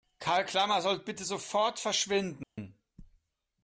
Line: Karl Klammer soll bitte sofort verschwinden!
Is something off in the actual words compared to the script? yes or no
no